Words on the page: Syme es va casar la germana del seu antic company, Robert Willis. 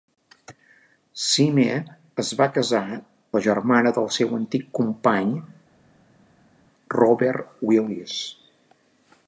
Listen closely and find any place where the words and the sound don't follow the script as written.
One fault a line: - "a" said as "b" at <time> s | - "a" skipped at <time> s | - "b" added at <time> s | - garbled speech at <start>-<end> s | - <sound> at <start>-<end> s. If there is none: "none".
none